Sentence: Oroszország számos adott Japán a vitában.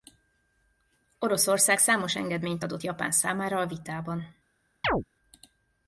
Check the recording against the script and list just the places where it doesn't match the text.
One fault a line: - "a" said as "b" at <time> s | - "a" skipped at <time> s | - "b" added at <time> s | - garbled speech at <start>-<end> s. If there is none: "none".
- "engedményt" added at 2.1 s
- "számára" added at 3.1 s